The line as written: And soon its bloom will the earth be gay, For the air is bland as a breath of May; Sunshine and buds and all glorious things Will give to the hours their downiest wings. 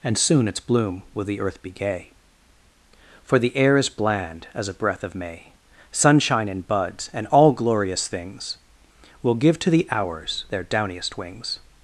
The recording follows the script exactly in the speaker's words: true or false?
true